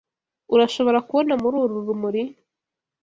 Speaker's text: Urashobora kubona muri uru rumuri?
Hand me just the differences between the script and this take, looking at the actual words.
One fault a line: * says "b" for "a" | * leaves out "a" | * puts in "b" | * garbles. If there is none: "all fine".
all fine